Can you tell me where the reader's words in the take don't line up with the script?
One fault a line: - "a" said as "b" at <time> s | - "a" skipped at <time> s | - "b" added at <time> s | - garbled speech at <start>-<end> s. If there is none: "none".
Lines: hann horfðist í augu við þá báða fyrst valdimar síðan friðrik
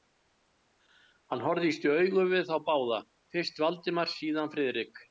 none